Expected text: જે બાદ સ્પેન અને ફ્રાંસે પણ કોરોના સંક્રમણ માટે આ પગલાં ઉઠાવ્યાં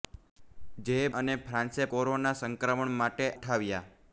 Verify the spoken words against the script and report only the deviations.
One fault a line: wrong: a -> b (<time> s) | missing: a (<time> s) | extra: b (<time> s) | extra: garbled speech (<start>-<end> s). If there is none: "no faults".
missing: બાદ સ્પેન (0.9 s)
missing: પણ (1.9 s)
missing: આ પગલાં (3.3 s)